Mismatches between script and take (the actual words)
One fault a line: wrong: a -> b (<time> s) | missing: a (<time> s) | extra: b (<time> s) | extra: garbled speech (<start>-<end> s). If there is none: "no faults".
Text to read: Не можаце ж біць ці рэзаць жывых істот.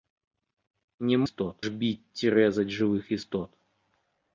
wrong: можаце -> істот (1.3 s)